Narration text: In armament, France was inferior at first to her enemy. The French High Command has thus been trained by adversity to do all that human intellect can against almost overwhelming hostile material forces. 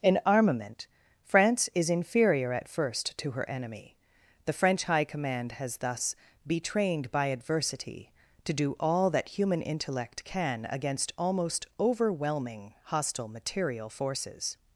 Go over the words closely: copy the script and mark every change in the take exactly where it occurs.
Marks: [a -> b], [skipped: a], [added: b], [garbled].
In armament, France [was -> is] inferior at first to her enemy. The French High Command has thus [been -> be] trained by adversity to do all that human intellect can against almost overwhelming hostile material forces.